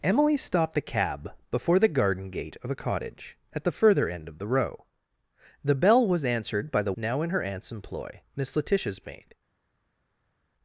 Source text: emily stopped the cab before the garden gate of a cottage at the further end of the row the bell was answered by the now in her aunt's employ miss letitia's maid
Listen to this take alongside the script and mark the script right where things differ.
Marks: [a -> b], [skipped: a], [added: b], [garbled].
emily stopped the cab before the garden gate of a cottage at the further end of the row the bell was answered by the now in her aunt's employ miss letitia's maid